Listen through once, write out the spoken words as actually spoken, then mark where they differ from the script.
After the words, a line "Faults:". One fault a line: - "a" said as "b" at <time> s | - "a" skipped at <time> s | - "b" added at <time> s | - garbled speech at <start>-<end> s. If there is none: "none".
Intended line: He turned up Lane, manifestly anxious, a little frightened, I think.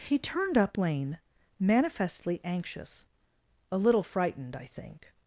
He turned up Lane, manifestly anxious, a little frightened, I think.
Faults:
none